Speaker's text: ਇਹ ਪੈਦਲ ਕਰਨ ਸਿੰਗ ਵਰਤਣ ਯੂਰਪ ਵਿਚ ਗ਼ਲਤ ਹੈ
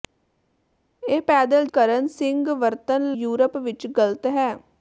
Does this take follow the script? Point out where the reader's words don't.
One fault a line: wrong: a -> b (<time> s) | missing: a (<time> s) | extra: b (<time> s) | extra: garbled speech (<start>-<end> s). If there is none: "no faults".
no faults